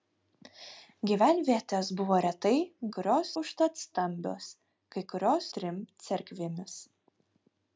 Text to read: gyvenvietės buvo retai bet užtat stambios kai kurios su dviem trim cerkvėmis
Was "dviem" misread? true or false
true